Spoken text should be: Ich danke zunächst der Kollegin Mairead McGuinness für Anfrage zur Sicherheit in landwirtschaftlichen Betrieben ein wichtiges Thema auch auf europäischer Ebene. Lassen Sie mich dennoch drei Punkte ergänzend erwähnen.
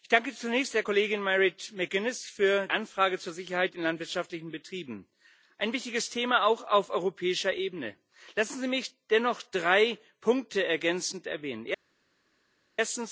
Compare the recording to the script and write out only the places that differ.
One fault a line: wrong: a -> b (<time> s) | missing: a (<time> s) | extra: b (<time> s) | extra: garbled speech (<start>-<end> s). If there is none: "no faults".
no faults